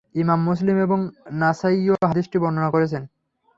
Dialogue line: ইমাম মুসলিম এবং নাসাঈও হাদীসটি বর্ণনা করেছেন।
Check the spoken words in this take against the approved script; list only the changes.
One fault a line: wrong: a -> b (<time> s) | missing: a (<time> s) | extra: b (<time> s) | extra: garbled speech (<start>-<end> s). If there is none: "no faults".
no faults